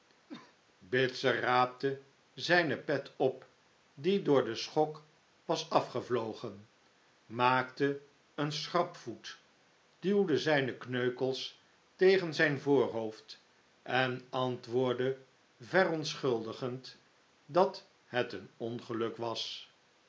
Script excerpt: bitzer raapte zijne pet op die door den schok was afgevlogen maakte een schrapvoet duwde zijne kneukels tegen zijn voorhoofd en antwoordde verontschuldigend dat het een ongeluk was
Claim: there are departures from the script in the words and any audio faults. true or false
true